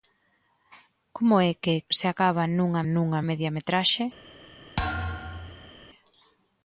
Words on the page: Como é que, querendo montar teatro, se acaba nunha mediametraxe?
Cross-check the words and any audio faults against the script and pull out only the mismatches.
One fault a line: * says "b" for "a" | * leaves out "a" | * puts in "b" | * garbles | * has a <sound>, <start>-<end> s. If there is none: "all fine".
* leaves out "querendo montar teatro"
* puts in "nunha"
* has a thud, 4.8-5.7 s